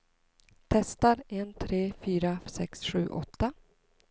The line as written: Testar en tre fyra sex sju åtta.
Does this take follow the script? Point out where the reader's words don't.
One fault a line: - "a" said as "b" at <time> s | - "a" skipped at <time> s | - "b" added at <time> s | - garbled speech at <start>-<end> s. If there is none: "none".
none